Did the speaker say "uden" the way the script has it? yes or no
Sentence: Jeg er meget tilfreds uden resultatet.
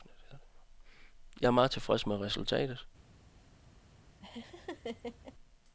no